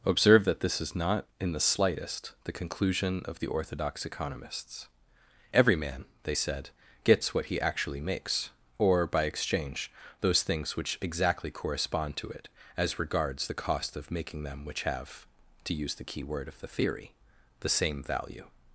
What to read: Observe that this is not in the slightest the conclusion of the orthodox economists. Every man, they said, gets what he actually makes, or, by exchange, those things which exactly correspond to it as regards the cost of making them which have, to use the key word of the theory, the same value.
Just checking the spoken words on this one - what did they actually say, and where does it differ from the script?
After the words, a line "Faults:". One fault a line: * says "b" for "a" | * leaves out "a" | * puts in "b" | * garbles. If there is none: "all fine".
Observe that this is not in the slightest the conclusion of the orthodox economists. Every man, they said, gets what he actually makes, or, by exchange, those things which exactly correspond to it as regards the cost of making them which have, to use the key word of the theory, the same value.
Faults:
all fine